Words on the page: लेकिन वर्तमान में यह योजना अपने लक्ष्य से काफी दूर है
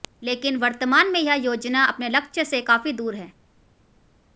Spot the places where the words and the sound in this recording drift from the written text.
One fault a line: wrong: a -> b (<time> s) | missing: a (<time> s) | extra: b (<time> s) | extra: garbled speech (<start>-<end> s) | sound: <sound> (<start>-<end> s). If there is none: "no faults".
no faults